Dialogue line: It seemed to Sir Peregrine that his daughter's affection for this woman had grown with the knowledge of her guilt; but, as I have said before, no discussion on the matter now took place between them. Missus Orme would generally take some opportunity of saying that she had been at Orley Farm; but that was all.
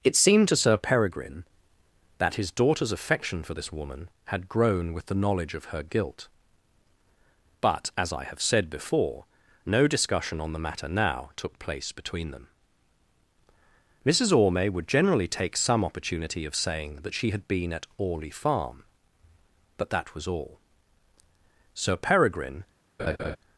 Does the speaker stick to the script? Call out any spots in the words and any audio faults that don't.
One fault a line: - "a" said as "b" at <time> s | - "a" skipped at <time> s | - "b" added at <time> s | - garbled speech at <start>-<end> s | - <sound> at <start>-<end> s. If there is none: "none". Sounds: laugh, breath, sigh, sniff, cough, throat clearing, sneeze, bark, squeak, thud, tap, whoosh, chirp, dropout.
- "Sir Peregrine" added at 21.7 s
- laugh at 23.0-23.4 s